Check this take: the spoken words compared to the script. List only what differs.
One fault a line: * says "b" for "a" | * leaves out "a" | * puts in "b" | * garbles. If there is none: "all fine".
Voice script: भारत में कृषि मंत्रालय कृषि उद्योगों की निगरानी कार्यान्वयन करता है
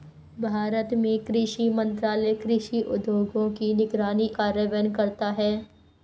all fine